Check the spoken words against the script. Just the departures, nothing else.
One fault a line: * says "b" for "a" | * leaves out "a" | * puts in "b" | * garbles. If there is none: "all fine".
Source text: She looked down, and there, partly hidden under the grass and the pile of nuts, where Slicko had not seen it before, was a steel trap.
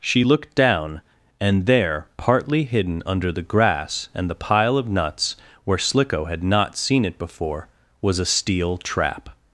all fine